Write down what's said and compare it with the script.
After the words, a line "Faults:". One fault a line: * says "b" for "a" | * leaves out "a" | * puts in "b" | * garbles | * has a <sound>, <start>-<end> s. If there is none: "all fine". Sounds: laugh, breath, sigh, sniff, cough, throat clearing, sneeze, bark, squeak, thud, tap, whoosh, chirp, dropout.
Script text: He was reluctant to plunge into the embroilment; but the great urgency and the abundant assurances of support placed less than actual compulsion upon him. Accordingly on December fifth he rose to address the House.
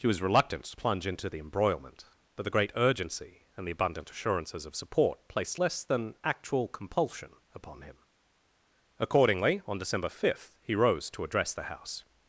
He was reluctant to plunge into the embroilment; but the great urgency and the abundant assurances of support placed less than actual compulsion upon him. Accordingly on December fifth he rose to address the House.
Faults:
all fine